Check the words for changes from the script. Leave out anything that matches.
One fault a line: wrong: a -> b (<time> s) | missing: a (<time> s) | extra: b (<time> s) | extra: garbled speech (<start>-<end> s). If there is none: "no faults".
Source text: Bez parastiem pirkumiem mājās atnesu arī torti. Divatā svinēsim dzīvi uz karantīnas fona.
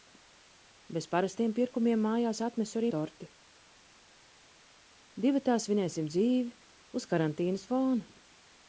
no faults